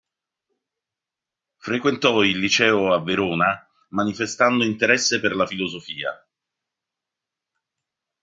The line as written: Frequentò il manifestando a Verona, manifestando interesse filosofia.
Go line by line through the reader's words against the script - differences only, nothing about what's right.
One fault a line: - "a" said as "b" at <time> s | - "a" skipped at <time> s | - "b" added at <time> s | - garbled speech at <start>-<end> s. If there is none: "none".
- "manifestando" said as "liceo" at 2.4 s
- "per la" added at 5.2 s